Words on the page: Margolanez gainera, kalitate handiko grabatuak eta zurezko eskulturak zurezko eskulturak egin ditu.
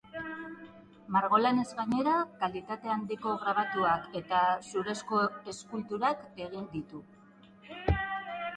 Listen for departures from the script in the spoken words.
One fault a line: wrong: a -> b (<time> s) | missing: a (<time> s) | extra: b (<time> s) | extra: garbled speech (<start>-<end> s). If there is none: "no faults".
missing: zurezko eskulturak (6.3 s)